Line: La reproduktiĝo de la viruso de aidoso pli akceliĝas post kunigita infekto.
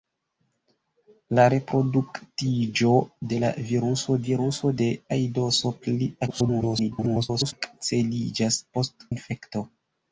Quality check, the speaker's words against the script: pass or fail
fail